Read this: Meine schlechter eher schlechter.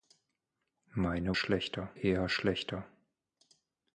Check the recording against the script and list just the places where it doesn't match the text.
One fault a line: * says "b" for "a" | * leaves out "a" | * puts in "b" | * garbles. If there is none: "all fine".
all fine